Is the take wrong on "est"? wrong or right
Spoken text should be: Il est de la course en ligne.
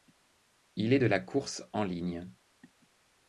right